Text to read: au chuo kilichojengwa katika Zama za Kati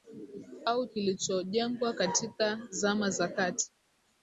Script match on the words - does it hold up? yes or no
no